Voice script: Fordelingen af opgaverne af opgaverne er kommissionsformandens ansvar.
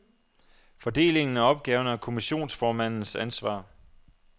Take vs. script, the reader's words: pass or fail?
fail